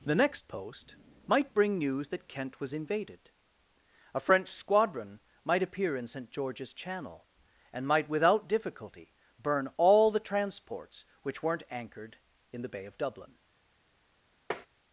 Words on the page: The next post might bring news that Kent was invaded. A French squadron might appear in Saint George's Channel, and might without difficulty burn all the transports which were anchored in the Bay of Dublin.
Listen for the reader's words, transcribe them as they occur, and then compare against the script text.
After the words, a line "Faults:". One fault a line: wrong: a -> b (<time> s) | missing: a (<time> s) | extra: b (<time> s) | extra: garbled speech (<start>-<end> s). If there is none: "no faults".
The next post might bring news that Kent was invaded. A French squadron might appear in Saint George's Channel, and might without difficulty burn all the transports which weren't anchored in the Bay of Dublin.
Faults:
wrong: were -> weren't (11.4 s)